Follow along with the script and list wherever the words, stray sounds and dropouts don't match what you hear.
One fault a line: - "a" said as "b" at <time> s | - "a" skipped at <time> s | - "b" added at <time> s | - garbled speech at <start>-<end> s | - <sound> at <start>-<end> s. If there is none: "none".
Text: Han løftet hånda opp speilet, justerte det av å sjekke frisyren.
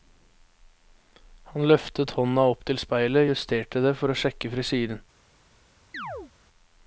- "til" added at 2.7 s
- "av" said as "for" at 4.0 s
- chirp at 5.9-6.3 s